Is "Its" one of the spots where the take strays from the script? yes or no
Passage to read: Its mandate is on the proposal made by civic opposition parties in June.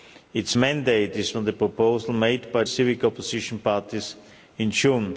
no